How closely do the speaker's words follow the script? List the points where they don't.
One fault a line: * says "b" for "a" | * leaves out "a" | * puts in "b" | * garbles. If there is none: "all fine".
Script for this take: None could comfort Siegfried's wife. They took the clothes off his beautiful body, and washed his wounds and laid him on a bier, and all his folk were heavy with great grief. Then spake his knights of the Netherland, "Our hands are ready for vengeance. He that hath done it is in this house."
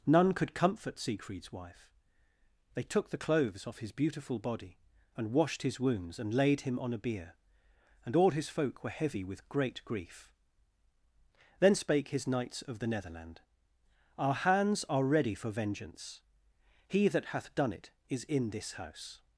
all fine